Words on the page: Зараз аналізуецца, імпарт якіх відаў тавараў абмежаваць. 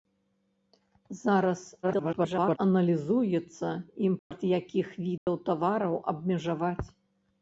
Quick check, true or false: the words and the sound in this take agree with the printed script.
false